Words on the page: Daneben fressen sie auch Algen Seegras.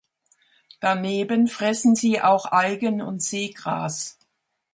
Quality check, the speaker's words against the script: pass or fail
fail